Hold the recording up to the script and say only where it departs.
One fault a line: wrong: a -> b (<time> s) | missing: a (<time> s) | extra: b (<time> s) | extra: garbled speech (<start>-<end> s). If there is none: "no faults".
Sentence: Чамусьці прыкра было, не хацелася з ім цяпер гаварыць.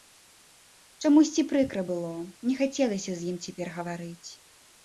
no faults